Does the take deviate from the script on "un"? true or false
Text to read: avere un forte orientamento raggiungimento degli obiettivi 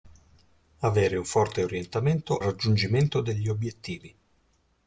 false